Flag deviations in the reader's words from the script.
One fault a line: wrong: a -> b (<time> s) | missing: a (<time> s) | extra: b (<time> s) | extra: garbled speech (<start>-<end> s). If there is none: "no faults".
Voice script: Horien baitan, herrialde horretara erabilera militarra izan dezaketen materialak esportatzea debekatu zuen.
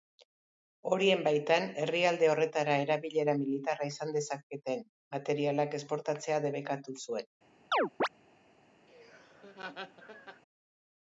no faults